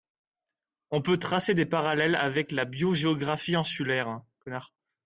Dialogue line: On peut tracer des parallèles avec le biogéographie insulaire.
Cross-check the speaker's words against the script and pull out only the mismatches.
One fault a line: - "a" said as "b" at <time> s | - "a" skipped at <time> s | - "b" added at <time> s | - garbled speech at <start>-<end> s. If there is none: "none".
- "le" said as "la" at 2.5 s